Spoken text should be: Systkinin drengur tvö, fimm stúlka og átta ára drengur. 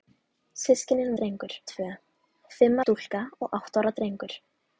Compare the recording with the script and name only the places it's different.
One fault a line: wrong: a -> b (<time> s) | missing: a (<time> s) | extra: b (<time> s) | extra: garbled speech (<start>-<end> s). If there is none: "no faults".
no faults